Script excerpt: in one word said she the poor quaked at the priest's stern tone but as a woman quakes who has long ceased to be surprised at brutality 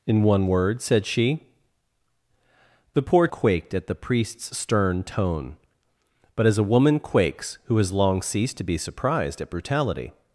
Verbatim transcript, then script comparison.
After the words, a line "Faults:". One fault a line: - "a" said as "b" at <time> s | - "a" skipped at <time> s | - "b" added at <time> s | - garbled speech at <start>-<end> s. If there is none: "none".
in one word said she the poor quaked at the priest's stern tone but as a woman quakes who has long ceased to be surprised at brutality
Faults:
none